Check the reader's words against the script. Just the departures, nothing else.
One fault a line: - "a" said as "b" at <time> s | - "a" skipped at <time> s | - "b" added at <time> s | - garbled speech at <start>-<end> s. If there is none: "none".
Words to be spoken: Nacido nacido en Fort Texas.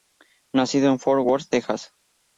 - "nacido" skipped at 0.9 s
- "Worth" added at 1.2 s